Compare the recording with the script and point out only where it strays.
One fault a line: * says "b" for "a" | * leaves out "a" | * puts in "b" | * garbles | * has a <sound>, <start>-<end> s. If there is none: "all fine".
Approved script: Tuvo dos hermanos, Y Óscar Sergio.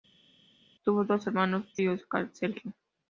all fine